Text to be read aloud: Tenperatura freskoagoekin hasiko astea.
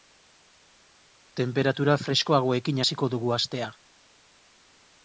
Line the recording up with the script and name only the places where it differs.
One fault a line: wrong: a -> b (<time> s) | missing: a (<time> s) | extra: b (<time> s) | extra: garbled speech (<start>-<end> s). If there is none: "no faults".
extra: dugu (3.2 s)